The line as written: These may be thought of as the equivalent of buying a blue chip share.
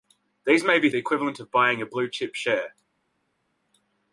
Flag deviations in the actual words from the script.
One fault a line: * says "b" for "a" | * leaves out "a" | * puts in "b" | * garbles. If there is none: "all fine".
* leaves out "thought of as"